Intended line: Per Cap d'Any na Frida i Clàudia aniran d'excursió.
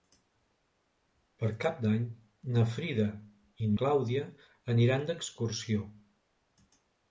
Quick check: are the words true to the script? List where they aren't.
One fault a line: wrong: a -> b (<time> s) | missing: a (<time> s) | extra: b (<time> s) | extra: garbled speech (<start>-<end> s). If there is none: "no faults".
no faults